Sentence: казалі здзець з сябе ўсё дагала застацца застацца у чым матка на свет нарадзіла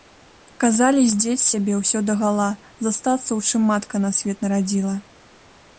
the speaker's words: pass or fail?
fail